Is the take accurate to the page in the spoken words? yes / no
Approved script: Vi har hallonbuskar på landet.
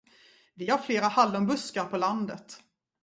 no